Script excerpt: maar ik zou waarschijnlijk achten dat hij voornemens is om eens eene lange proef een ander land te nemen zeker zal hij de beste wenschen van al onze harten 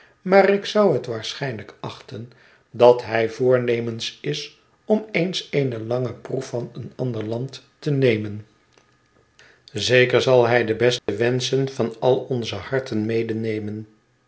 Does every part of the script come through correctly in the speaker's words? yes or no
no